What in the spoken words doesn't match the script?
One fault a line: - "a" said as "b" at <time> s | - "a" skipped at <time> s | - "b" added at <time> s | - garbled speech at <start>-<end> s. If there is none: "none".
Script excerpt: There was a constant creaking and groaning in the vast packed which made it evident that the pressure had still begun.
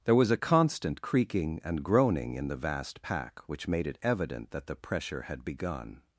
- "packed" said as "pack" at 3.0 s
- "still" skipped at 5.4 s